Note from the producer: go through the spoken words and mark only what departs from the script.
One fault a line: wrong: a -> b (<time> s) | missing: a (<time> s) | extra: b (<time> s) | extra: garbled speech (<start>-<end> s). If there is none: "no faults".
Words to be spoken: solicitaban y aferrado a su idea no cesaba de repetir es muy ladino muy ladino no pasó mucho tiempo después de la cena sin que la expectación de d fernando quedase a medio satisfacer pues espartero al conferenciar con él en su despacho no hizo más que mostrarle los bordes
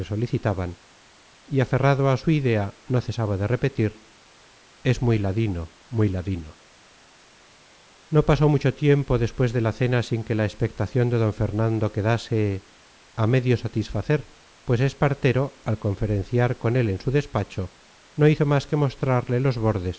no faults